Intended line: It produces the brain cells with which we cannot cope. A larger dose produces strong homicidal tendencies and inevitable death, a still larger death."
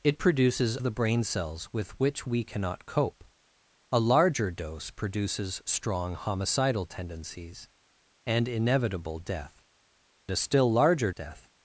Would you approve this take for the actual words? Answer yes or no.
yes